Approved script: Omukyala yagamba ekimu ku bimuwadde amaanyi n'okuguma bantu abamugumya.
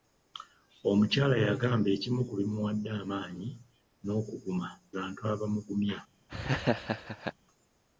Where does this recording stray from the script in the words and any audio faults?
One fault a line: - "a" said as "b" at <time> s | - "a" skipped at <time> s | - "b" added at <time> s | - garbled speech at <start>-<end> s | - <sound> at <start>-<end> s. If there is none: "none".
- laugh at 6.3-7.3 s